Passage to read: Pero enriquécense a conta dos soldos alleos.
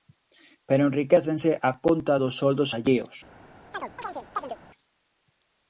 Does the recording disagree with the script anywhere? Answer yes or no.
no